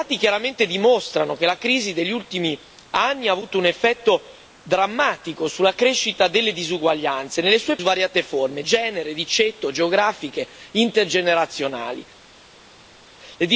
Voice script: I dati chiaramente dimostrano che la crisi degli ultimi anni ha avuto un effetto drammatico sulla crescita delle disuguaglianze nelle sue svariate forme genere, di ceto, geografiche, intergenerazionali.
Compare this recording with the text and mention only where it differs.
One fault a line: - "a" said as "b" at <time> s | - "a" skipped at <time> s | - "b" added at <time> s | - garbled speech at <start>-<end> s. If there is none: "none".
none